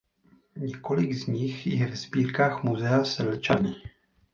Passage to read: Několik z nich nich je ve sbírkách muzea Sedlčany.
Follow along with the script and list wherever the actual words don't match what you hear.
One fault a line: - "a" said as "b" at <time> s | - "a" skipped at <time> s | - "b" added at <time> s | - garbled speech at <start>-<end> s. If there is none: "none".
- "nich" skipped at 1.7 s